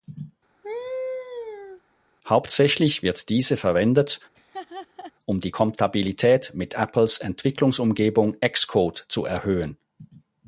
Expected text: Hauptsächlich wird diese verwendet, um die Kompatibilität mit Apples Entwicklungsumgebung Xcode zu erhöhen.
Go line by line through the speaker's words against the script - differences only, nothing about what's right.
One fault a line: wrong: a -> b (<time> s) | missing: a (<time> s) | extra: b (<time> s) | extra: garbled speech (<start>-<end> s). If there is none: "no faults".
no faults